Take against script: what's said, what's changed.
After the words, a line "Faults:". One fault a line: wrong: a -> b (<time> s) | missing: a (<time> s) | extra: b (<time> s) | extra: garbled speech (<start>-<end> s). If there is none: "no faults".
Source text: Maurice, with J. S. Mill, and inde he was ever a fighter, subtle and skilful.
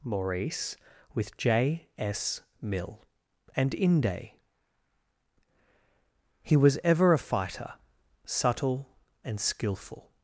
Maurice, with J. S. Mill, and inde he was ever a fighter, subtle and skilful.
Faults:
no faults